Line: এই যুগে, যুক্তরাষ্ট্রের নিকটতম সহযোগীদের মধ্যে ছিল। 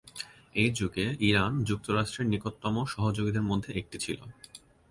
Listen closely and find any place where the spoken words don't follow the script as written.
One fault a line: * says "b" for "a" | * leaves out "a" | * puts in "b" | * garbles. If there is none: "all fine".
* puts in "ইরান"
* puts in "একটি"